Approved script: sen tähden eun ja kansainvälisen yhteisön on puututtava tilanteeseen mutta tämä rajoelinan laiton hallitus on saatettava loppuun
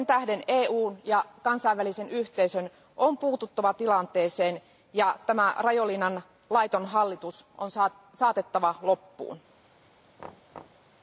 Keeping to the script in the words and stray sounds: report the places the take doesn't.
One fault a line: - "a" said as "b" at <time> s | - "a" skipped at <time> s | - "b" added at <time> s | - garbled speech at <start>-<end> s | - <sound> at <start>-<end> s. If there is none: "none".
- "mutta" said as "ja" at 4.9 s
- thud at 10.2-10.9 s